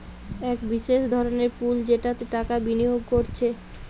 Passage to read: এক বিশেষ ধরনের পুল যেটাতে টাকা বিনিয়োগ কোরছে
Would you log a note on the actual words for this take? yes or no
no